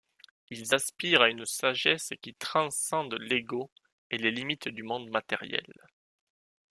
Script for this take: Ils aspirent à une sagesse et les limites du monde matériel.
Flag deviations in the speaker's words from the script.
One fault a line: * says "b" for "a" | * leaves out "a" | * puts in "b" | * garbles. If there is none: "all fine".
* puts in "qui transcende l'ego"